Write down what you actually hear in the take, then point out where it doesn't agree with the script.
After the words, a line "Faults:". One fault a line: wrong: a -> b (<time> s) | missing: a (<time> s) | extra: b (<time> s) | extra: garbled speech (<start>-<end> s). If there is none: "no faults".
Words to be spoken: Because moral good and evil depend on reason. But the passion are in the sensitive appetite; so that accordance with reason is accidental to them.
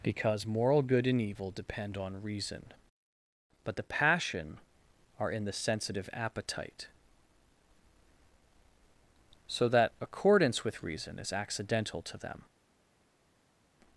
Because moral good and evil depend on reason. But the passion are in the sensitive appetite; so that accordance with reason is accidental to them.
Faults:
no faults